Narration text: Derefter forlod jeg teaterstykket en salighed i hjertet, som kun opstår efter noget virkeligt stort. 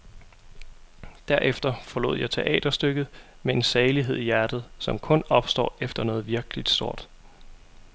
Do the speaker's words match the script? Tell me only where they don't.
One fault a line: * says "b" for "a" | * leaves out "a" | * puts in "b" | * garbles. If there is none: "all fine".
* puts in "med"